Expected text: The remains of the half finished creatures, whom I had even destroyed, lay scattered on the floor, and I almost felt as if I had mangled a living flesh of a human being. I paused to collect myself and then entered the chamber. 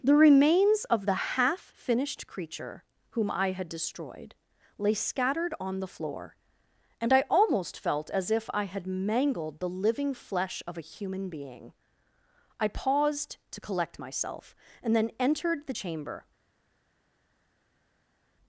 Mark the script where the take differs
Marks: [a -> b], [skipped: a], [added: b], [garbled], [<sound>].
The remains of the half finished [creatures, -> creature] whom I had [skipped: even] destroyed, lay scattered on the floor, and I almost felt as if I had mangled [a -> the] living flesh of a human being. I paused to collect myself and then entered the chamber.